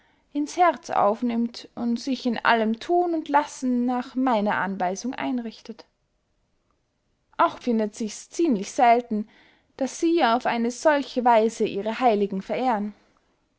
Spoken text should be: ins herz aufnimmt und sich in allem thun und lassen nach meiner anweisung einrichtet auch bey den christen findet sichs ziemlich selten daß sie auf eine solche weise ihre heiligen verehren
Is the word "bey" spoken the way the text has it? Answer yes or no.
no